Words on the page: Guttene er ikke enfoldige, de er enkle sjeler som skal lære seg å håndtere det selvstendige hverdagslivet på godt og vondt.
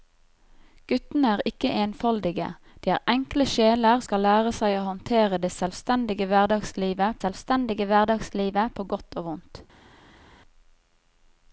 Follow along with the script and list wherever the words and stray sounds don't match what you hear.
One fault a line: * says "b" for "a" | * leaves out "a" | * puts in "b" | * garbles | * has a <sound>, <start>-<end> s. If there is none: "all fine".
* leaves out "som"
* puts in "selvstendige hverdagslivet"